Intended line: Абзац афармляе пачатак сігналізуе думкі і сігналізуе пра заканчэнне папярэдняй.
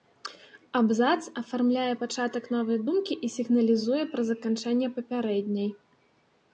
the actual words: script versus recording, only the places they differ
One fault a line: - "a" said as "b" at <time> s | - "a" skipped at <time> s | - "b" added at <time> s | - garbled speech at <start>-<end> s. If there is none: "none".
- "сігналізуе" said as "новай" at 2.6 s